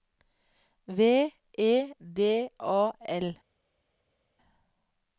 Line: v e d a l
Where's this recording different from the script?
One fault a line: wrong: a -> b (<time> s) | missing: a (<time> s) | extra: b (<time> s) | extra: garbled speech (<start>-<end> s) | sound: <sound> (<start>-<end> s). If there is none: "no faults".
no faults